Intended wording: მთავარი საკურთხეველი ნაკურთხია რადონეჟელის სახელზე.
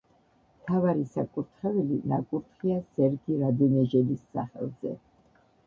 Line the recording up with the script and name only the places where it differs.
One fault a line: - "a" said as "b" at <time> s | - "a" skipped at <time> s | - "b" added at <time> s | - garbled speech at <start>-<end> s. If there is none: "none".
- "სერგი" added at 3.0 s